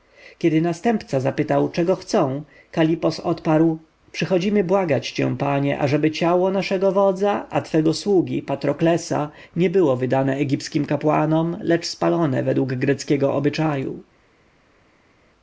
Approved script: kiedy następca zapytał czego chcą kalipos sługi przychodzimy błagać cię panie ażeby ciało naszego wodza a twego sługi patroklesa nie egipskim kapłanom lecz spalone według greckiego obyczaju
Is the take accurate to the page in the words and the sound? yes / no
no